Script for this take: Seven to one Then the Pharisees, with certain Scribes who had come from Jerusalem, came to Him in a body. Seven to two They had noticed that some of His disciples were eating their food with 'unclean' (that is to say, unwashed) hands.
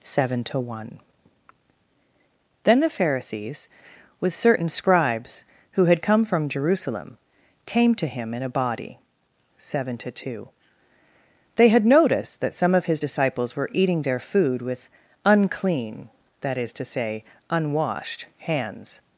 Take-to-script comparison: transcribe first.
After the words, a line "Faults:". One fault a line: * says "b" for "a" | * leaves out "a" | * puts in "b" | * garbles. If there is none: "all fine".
Seven to one Then the Pharisees, with certain Scribes who had come from Jerusalem, came to Him in a body. Seven to two They had noticed that some of His disciples were eating their food with 'unclean' (that is to say, unwashed) hands.
Faults:
all fine